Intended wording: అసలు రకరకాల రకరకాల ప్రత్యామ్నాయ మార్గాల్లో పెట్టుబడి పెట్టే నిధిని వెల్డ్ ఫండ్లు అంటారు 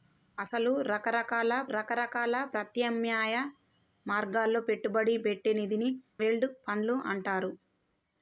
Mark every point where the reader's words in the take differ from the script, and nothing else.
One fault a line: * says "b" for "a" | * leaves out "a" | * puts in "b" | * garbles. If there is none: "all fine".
all fine